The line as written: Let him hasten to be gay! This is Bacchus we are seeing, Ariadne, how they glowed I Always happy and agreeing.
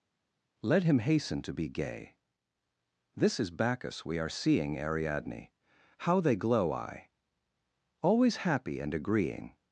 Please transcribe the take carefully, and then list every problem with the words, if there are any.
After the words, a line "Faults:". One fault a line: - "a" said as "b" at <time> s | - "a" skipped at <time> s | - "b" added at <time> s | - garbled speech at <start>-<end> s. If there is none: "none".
Let him hasten to be gay! This is Bacchus we are seeing, Ariadne, how they glow I Always happy and agreeing.
Faults:
- "glowed" said as "glow" at 6.3 s